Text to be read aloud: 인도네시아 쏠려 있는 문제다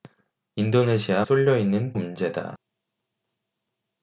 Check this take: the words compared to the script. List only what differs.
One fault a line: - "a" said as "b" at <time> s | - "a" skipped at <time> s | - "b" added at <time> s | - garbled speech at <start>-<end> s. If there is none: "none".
none